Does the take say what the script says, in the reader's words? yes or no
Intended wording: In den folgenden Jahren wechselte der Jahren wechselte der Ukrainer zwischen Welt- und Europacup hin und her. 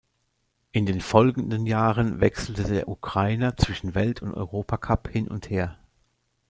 no